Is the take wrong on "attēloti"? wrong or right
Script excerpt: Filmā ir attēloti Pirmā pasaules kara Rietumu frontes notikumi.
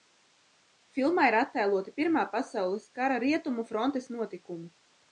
right